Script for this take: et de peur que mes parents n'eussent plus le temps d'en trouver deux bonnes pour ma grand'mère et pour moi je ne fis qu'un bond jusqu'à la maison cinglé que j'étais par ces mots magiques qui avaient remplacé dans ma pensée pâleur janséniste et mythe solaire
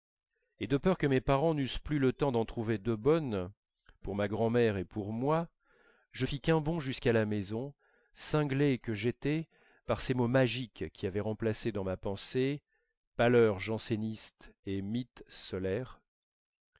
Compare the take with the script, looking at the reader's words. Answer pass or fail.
fail